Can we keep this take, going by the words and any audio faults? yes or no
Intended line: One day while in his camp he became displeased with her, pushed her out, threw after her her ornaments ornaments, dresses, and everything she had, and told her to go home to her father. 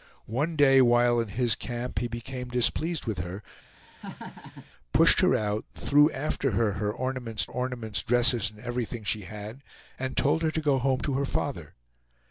no